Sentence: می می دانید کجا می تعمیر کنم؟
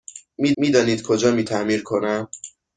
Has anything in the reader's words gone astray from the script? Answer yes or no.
no